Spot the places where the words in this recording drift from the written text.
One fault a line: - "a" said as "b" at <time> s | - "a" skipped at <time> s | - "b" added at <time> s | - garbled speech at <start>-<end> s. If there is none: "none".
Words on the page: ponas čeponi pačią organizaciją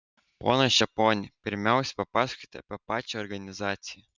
- "pirmiausia papasakokite apie" added at 1.5 s